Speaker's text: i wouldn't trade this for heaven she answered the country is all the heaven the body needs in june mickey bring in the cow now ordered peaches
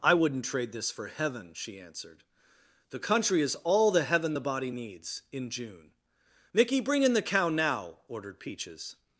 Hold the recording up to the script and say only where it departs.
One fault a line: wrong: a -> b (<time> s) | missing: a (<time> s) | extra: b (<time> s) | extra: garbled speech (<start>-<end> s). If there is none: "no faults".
no faults